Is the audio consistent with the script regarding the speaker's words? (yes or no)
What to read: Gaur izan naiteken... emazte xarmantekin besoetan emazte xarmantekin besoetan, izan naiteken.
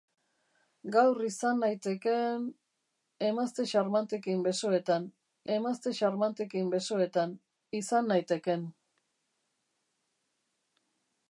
yes